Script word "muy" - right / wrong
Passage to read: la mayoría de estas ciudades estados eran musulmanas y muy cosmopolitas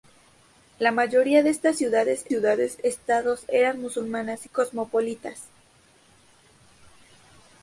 wrong